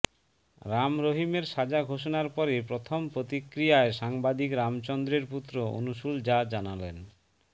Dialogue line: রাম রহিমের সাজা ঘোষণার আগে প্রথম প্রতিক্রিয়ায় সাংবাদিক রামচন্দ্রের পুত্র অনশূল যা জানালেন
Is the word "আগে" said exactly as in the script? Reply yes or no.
no